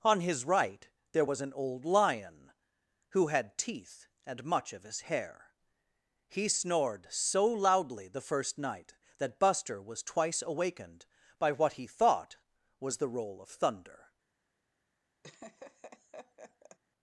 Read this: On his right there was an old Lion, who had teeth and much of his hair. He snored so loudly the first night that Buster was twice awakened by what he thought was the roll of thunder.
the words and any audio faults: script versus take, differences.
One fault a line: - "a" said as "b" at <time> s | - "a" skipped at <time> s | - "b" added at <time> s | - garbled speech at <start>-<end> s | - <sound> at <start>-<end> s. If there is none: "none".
- laugh at 15.2-16.8 s